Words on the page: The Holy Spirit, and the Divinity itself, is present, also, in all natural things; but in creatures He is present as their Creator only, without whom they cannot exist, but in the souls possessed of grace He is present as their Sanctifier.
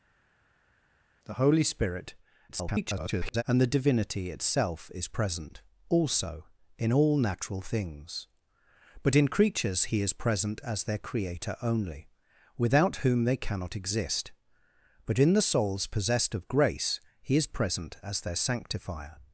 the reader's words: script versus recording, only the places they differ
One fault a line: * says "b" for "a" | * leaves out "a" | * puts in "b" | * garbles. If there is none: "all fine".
* garbles